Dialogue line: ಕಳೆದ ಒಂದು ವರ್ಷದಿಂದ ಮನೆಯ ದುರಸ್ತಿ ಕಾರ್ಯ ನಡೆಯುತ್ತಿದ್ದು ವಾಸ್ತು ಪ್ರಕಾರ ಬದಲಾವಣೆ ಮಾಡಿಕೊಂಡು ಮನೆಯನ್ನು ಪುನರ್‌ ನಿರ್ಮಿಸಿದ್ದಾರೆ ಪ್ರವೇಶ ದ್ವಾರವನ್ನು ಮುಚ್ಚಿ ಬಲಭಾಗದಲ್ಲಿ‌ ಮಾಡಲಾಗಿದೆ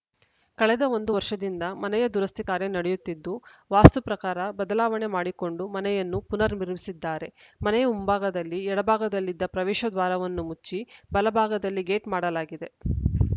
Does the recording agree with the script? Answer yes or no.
no